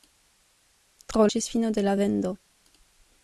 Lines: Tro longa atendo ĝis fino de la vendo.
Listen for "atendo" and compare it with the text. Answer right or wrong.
wrong